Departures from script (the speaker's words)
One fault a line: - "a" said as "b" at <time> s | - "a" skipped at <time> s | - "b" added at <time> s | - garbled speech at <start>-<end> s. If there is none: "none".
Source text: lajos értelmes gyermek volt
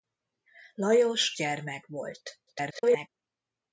- "értelmes" skipped at 1.4 s
- garbled speech at 2.5-3.1 s